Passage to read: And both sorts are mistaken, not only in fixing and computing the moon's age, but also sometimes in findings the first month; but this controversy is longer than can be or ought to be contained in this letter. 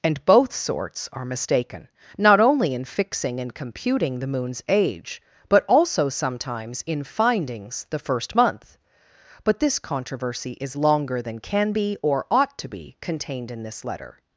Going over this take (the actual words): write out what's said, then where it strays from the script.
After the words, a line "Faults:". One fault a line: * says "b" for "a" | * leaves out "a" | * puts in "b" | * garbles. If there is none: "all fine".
And both sorts are mistaken, not only in fixing and computing the moon's age, but also sometimes in findings the first month; but this controversy is longer than can be or ought to be contained in this letter.
Faults:
all fine